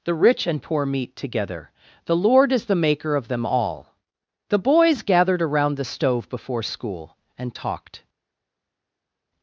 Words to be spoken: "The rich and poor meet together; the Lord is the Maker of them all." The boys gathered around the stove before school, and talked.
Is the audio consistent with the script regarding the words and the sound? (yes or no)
yes